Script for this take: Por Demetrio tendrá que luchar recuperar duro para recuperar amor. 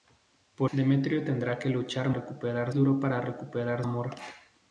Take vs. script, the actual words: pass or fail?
pass